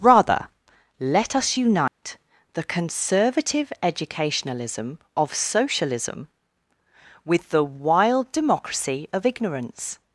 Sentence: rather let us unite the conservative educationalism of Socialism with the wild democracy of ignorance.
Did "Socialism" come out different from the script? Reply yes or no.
no